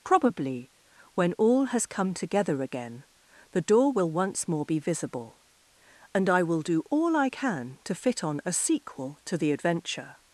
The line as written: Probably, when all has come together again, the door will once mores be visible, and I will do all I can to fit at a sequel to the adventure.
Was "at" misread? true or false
true